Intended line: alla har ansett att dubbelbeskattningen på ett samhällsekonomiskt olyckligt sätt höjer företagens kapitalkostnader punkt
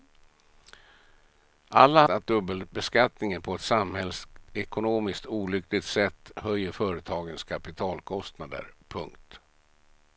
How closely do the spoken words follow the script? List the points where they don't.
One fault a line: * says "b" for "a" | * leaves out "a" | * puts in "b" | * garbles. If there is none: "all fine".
* leaves out "har ansett"